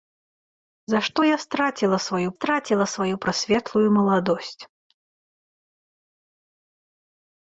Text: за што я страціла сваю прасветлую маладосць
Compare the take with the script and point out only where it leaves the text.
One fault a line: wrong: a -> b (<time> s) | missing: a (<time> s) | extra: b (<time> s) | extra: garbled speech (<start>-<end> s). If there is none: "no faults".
extra: страціла сваю (2.4 s)